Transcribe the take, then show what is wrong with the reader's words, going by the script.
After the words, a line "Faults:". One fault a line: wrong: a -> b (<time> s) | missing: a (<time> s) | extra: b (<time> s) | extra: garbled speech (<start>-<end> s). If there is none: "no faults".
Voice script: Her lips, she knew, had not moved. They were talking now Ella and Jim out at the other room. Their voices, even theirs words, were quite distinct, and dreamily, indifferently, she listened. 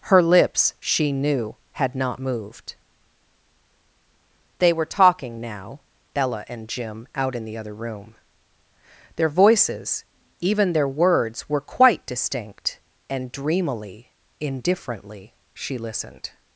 Her lips, she knew, had not moved. They were talking now Ella and Jim out in the other room. Their voices, even their words, were quite distinct, and dreamily, indifferently, she listened.
Faults:
wrong: at -> in (7.3 s)
wrong: theirs -> their (10.7 s)